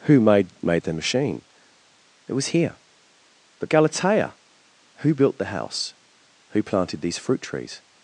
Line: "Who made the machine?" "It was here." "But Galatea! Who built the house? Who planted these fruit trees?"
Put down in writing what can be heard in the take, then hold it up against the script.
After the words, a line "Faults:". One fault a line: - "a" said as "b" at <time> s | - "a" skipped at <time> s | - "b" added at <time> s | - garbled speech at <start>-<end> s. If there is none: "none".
"Who made made the machine?" "It was here." "But Galatea! Who built the house? Who planted these fruit trees?"
Faults:
- "made" added at 0.6 s